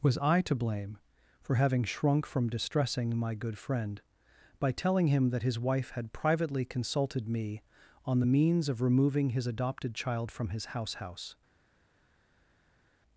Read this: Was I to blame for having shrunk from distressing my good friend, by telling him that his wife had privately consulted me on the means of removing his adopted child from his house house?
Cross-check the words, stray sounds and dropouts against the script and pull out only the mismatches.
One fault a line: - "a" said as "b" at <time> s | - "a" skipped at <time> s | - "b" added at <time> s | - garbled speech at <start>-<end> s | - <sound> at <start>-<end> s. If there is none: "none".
none